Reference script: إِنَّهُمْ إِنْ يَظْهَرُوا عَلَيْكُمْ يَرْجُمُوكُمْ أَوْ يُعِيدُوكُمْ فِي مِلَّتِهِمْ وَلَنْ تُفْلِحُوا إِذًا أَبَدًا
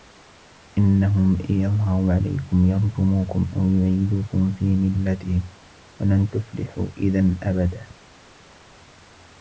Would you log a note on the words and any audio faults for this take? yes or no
no